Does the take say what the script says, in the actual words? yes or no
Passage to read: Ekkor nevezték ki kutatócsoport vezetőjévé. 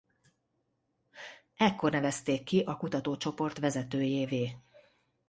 no